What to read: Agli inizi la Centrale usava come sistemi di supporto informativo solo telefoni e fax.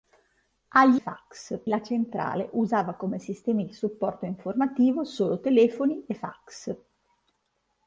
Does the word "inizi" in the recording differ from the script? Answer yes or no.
yes